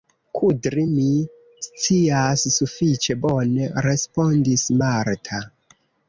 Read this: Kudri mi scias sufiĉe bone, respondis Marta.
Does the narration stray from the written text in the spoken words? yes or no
no